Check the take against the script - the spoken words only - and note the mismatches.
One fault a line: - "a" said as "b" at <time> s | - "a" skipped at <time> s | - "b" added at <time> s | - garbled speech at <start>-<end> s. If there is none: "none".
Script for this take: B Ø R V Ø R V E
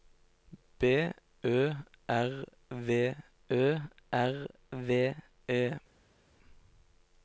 none